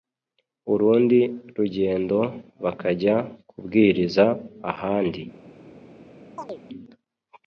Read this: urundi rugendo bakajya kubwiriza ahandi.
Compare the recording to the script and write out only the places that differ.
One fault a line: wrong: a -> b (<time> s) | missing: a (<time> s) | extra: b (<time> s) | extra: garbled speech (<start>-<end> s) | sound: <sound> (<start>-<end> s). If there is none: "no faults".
sound: chirp (6.4-6.6 s)